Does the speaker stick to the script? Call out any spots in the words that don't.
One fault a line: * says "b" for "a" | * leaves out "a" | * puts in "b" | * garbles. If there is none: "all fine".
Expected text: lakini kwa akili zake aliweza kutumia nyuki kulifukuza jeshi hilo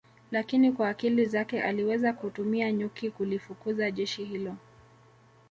all fine